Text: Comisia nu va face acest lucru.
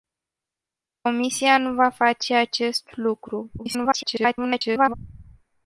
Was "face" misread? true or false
false